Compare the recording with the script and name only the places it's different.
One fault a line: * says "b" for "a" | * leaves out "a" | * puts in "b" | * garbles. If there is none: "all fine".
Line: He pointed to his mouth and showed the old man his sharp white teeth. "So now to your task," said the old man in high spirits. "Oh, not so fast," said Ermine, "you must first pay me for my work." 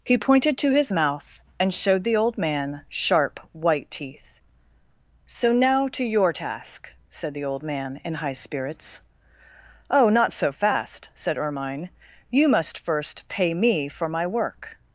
* leaves out "his"